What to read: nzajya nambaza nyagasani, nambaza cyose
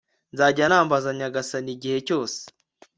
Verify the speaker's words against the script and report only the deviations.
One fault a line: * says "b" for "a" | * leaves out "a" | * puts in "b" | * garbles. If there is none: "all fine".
* says "igihe" for "nambaza"